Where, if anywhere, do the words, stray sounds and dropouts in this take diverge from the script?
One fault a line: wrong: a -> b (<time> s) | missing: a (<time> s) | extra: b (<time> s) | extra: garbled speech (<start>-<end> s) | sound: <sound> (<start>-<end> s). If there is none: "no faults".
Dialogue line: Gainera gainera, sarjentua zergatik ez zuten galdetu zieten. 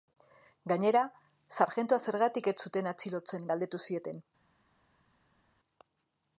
missing: gainera (1.0 s)
extra: atxilotzen (3.0 s)